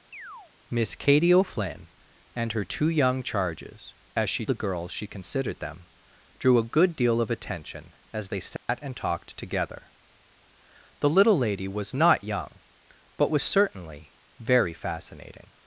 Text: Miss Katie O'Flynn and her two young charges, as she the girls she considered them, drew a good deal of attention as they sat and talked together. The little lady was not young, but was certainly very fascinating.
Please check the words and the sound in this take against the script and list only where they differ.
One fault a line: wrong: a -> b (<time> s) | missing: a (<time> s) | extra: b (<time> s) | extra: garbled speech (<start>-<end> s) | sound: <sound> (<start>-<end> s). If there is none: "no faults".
sound: chirp (0.1-0.5 s)
sound: dropout (8.6-8.7 s)